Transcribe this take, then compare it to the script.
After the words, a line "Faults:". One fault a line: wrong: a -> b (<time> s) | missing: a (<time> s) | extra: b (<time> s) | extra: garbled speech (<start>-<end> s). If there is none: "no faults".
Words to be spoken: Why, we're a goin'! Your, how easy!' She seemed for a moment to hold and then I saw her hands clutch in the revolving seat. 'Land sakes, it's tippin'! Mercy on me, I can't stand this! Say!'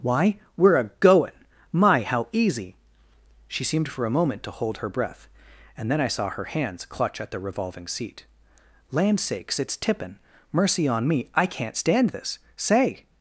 Why, we're a goin'! My, how easy!' She seemed for a moment to hold her breath, and then I saw her hands clutch at the revolving seat. 'Land sakes, it's tippin'! Mercy on me, I can't stand this! Say!'
Faults:
wrong: Your -> My (1.7 s)
extra: her breath (4.8 s)
wrong: in -> at (7.2 s)